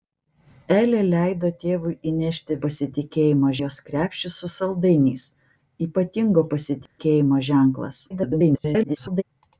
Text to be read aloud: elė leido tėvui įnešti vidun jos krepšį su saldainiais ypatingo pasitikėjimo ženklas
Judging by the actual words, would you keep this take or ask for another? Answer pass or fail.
fail